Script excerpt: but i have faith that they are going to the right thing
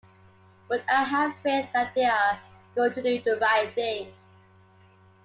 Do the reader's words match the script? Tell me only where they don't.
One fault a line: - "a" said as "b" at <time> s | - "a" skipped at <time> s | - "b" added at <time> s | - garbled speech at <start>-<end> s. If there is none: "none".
- "do" added at 3.0 s